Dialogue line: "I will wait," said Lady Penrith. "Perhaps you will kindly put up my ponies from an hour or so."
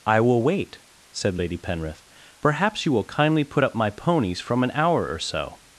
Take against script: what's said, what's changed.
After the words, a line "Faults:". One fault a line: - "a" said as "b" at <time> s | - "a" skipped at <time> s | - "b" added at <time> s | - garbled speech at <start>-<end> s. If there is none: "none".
"I will wait," said Lady Penrith. "Perhaps you will kindly put up my ponies from an hour or so."
Faults:
none